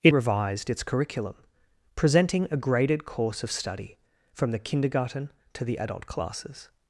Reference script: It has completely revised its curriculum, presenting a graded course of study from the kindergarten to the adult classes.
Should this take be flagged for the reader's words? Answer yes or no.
yes